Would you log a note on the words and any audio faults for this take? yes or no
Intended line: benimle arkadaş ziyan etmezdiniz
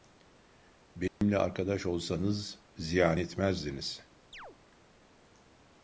yes